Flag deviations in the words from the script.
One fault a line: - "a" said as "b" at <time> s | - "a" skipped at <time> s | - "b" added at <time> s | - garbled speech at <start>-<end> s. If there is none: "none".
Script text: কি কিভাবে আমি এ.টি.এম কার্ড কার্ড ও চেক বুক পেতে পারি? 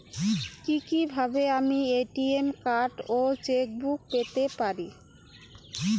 - "কার্ড" skipped at 3.0 s